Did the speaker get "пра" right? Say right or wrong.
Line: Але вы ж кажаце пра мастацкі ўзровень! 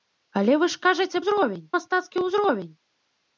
wrong